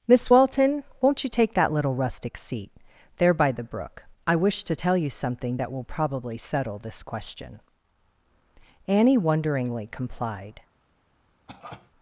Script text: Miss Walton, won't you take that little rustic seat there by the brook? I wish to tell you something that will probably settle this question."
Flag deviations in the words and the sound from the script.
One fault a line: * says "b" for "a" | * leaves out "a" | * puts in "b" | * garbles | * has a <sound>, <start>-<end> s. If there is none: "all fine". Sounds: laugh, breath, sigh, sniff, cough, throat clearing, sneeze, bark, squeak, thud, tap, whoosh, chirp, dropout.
* puts in "Annie wonderingly complied"
* has a cough, 11.5-11.9 s